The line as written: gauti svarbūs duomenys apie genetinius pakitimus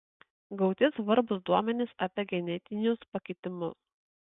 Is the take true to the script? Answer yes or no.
yes